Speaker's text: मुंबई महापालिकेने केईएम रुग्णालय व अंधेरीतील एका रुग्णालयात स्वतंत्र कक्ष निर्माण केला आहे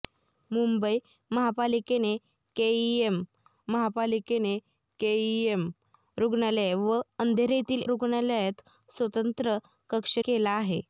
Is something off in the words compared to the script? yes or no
yes